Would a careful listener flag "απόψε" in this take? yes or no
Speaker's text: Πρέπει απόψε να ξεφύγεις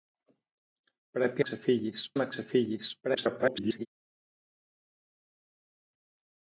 yes